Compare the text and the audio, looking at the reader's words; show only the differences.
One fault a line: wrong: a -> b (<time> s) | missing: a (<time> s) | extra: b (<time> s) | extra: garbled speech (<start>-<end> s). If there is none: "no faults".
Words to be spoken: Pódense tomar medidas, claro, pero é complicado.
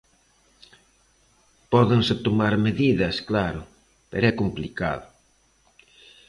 no faults